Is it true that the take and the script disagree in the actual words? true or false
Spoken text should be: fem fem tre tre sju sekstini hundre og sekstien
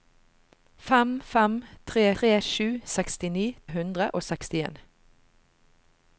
false